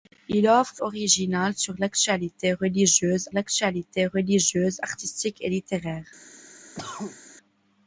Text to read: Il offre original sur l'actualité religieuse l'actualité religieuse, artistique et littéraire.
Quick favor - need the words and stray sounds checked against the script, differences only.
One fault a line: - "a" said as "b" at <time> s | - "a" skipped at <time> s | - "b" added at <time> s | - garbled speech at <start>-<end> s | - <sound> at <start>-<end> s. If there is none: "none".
- cough at 6.7-7.2 s